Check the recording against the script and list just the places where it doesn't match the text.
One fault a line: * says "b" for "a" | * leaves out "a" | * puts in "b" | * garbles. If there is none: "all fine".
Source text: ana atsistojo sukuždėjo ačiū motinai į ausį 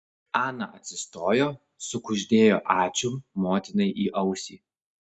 all fine